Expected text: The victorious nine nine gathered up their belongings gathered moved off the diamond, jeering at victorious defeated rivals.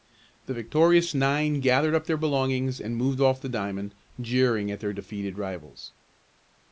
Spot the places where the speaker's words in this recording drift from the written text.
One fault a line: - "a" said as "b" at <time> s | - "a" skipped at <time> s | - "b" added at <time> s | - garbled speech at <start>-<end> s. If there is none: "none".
- "nine" skipped at 1.6 s
- "gathered" said as "and" at 2.8 s
- "victorious" said as "their" at 4.8 s